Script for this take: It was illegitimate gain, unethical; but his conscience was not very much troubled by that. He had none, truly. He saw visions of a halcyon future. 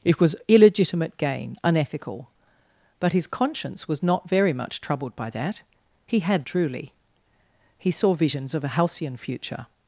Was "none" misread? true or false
true